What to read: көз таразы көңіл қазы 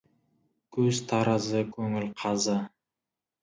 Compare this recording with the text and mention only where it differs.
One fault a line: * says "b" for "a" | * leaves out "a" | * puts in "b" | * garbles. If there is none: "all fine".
all fine